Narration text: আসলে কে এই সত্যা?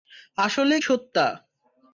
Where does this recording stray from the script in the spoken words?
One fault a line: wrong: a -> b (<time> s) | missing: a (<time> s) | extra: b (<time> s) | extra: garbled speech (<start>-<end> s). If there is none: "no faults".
missing: কে এই (0.8 s)